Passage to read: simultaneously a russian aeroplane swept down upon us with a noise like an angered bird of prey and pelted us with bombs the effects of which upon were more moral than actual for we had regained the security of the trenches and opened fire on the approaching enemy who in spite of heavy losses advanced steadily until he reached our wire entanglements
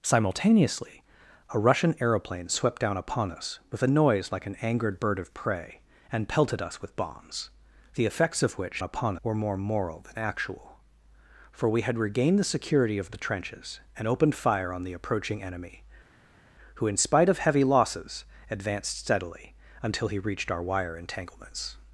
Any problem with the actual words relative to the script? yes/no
no